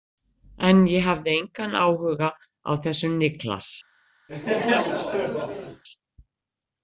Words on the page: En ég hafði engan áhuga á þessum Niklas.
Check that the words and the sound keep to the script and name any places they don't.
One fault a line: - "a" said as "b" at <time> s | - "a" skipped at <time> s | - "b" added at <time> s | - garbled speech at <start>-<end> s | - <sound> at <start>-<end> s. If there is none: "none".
- laugh at 4.3-5.8 s